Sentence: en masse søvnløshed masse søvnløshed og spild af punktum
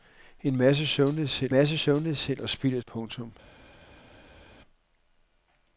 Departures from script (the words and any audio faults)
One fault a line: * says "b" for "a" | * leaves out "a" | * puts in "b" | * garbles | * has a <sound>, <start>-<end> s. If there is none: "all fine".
all fine